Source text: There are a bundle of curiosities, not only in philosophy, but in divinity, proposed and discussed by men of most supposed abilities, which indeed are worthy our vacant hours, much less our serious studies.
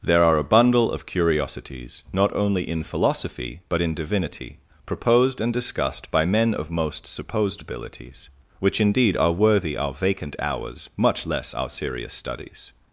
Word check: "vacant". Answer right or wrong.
right